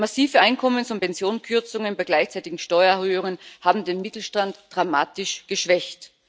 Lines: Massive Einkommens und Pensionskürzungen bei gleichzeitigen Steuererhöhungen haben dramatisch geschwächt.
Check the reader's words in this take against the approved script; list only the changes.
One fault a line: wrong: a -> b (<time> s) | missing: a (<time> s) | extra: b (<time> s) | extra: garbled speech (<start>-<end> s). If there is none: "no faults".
extra: den Mittelstand (3.9 s)